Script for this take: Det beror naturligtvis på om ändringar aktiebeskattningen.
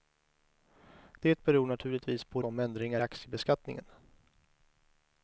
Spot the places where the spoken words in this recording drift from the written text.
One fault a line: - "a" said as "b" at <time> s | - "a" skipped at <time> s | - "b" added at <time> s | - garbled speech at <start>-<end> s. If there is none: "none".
none